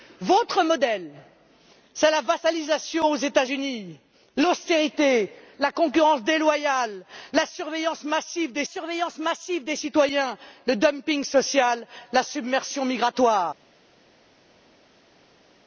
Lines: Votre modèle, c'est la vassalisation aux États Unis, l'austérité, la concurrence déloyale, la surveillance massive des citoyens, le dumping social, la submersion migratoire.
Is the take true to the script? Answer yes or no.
no